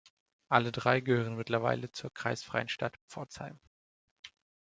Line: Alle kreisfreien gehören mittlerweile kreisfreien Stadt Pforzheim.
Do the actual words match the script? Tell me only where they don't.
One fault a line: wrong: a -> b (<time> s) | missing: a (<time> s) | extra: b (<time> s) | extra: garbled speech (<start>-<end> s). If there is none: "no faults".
wrong: kreisfreien -> drei (0.7 s)
extra: zur (1.9 s)